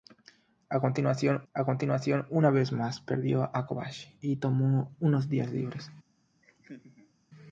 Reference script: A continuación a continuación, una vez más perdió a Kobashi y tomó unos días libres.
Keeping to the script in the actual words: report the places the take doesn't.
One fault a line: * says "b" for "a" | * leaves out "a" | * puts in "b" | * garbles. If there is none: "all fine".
all fine